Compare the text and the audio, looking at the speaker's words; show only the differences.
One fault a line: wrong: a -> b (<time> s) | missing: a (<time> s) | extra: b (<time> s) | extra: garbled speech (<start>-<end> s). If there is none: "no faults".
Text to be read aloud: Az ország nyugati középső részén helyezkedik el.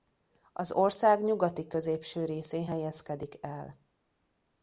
no faults